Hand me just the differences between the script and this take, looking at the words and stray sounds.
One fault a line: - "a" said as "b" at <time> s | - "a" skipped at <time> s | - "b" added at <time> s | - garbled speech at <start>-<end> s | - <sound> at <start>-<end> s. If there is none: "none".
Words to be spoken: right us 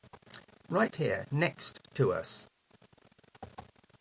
- "here next to" added at 0.9 s